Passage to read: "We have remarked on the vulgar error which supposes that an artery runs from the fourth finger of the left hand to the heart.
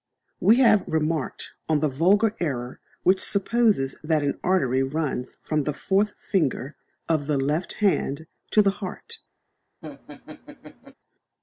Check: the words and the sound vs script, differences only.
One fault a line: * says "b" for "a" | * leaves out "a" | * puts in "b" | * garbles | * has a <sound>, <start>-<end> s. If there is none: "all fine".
* has a laugh, 9.8-10.9 s